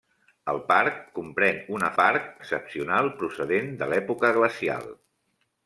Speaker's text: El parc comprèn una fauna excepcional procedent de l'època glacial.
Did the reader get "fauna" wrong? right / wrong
wrong